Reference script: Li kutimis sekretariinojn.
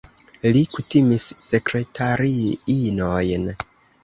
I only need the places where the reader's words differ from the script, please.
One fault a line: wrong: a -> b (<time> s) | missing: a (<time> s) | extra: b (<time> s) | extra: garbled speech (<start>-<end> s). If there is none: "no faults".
no faults